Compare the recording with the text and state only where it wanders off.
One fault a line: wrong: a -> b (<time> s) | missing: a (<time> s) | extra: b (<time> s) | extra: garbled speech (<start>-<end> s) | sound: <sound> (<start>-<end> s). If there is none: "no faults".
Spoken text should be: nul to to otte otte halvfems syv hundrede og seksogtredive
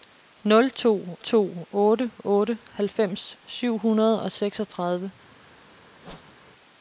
sound: whoosh (6.0-6.4 s)